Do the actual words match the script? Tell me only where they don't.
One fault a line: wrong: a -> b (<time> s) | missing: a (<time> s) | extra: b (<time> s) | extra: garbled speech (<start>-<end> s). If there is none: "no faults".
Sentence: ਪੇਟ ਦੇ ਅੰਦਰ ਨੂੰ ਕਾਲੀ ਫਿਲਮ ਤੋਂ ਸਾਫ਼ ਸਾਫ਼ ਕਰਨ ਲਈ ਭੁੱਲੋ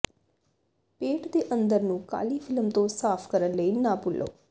missing: ਸਾਫ਼ (3.3 s)
extra: ਨਾ (3.7 s)